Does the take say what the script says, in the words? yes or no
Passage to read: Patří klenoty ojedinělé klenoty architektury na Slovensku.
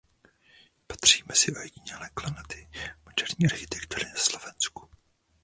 no